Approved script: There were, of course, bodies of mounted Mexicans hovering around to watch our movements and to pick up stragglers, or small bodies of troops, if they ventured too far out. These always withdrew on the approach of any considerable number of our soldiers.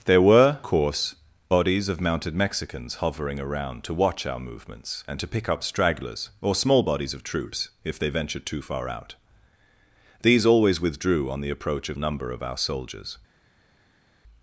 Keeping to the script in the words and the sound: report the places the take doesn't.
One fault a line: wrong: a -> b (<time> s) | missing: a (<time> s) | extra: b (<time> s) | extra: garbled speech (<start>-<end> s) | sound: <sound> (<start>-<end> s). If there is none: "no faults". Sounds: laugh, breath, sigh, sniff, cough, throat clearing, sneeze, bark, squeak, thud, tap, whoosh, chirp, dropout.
missing: of (0.6 s)
missing: any considerable (12.0 s)